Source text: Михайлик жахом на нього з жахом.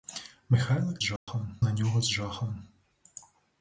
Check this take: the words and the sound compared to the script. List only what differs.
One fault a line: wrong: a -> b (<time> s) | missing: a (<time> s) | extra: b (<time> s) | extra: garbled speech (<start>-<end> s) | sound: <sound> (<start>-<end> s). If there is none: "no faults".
sound: dropout (1.2-1.3 s)